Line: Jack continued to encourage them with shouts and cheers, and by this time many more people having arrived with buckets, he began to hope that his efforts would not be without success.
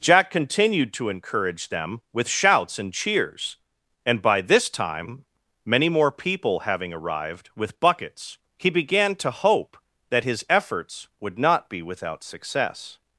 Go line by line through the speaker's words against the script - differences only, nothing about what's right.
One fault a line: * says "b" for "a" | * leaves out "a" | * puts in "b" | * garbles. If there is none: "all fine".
all fine